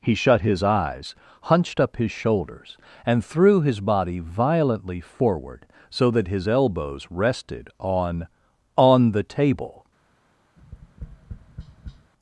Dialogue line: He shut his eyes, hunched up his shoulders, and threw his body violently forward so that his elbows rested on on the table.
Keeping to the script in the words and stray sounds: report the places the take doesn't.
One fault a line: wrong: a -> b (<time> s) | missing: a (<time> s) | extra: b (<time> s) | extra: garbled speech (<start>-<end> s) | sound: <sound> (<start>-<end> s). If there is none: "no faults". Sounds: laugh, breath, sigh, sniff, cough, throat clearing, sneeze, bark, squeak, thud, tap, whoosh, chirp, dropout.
sound: tap (10.6-12.1 s)